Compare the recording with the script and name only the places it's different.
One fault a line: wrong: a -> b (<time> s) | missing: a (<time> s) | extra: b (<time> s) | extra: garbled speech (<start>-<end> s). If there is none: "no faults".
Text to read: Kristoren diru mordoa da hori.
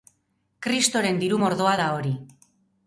no faults